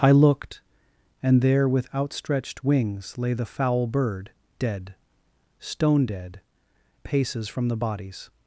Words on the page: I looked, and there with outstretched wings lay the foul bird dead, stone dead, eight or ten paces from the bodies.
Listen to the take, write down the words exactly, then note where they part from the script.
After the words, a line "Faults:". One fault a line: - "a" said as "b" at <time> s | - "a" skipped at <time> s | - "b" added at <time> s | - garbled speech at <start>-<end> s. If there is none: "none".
I looked, and there with outstretched wings lay the foul bird dead, stone dead, paces from the bodies.
Faults:
- "eight or ten" skipped at 6.4 s